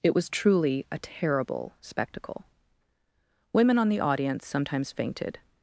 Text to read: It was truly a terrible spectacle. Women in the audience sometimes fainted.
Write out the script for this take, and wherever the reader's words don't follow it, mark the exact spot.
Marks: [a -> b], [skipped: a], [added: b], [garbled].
It was truly a terrible spectacle. Women [in -> on] the audience sometimes fainted.